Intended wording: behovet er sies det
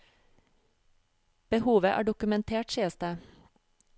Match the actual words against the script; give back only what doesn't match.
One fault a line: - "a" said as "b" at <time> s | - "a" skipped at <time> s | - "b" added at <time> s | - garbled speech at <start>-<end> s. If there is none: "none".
- "dokumentert" added at 2.0 s